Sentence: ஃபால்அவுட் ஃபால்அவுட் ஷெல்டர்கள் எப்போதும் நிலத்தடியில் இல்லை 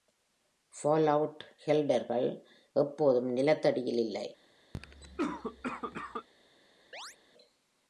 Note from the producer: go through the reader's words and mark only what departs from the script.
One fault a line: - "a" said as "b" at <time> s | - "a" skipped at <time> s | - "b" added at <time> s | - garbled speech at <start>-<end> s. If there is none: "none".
- "ஃபால்அவுட்" skipped at 1.4 s